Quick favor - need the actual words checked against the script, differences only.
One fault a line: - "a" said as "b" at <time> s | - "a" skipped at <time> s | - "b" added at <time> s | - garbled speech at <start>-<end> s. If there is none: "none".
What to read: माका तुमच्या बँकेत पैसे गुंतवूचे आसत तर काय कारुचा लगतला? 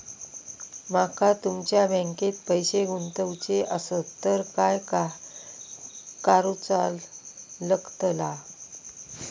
none